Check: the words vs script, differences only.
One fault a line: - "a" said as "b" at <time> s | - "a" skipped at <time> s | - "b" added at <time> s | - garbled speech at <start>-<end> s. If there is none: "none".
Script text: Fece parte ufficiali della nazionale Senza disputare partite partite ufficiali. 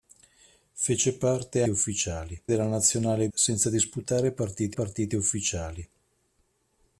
none